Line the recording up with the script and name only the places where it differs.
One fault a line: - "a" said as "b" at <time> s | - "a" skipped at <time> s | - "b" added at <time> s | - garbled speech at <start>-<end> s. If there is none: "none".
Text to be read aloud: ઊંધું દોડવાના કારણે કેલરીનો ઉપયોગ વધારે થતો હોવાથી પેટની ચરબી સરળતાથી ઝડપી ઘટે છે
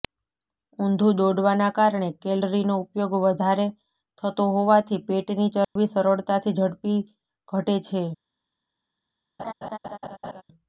none